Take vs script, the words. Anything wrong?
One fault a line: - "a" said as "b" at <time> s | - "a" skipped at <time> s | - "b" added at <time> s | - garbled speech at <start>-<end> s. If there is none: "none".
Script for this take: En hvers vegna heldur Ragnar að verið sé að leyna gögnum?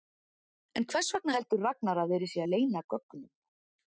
none